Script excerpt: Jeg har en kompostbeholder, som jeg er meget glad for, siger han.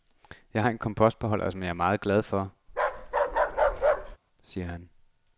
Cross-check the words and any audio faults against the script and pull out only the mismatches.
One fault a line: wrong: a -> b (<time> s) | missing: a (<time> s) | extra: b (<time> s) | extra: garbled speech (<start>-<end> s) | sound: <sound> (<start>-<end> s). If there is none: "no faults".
sound: bark (2.7-4.2 s)